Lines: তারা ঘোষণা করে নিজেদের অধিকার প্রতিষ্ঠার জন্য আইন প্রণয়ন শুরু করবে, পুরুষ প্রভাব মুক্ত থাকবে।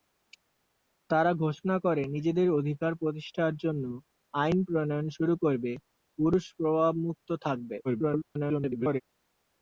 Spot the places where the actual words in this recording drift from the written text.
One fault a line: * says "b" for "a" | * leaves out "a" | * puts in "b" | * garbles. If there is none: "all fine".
* garbles